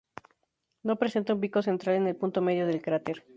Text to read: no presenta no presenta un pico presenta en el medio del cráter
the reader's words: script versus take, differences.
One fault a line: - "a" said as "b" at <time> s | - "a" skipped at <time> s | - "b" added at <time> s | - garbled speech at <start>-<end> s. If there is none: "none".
- "no presenta" skipped at 1.3 s
- "presenta" said as "central" at 1.6 s
- "punto" added at 2.1 s